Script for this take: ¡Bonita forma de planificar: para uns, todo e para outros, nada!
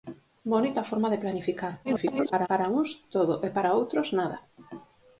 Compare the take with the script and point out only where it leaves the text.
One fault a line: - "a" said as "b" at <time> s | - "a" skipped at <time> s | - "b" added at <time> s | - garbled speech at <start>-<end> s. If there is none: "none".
- garbled speech at 1.8-2.5 s